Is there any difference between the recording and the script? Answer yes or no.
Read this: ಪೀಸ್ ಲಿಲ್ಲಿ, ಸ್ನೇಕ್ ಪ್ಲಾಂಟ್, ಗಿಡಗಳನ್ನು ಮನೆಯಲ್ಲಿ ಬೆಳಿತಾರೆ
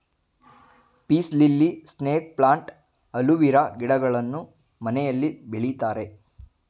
yes